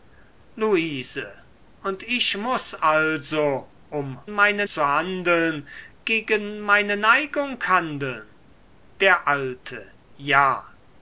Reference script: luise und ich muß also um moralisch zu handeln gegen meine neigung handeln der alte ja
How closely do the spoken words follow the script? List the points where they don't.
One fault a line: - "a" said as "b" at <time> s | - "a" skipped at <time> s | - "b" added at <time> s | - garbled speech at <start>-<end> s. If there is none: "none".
- "moralisch" said as "meine" at 4.3 s